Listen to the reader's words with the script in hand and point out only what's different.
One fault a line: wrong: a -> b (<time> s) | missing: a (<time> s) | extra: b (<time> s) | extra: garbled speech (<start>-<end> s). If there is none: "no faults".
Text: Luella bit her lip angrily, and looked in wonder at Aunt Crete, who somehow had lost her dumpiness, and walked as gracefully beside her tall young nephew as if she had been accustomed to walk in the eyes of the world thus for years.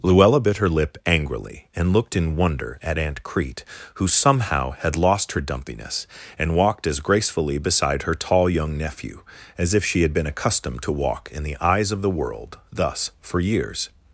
no faults